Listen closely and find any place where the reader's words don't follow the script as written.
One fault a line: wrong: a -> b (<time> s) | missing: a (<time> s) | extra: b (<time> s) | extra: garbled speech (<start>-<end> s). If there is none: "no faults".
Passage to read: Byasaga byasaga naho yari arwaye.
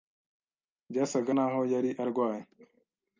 missing: byasaga (1.3 s)